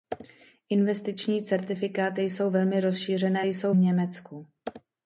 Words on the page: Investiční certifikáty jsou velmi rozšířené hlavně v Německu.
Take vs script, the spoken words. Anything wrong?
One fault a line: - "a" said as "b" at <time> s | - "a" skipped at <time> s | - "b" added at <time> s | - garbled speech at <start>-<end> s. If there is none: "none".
- "hlavně" said as "jsou" at 3.4 s